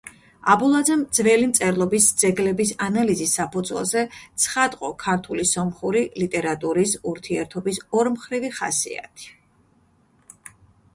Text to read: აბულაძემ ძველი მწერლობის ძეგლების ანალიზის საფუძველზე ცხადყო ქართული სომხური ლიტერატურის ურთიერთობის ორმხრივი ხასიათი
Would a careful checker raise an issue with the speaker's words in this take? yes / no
no